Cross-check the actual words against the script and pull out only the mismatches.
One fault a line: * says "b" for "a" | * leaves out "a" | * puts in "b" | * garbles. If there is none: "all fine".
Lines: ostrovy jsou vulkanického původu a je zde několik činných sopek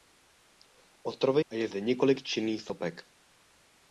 * leaves out "jsou vulkanického původu"